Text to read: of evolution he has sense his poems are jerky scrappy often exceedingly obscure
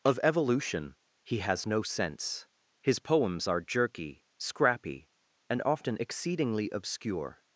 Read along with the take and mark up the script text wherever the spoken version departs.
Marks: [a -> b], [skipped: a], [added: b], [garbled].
of evolution he has [added: no] sense his poems are jerky scrappy [added: and] often exceedingly obscure